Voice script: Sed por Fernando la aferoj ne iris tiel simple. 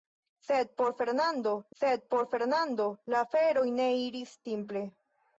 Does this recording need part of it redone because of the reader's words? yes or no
yes